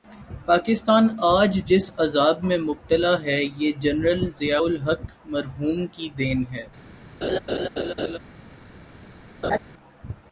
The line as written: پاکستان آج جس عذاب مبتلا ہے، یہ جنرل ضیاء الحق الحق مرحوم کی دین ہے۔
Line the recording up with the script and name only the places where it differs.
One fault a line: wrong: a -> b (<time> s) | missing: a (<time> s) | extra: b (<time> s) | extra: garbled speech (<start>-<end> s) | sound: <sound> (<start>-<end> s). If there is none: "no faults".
extra: میں (2.4 s)
missing: الحق (5.0 s)
sound: laugh (7.2-8.2 s)
sound: laugh (9.4-9.6 s)